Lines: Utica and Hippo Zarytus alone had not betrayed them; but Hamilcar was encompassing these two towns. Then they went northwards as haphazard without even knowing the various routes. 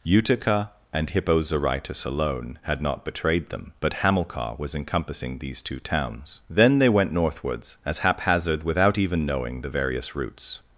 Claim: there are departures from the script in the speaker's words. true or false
false